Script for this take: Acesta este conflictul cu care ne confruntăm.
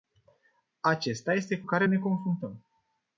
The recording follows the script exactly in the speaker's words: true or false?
false